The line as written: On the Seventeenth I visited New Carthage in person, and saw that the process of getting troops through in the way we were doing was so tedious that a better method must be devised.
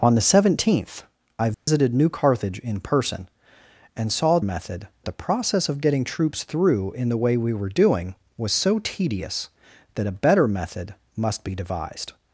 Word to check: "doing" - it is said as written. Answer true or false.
true